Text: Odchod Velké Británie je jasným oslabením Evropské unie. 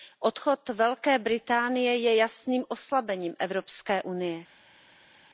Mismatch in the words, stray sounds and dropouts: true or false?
false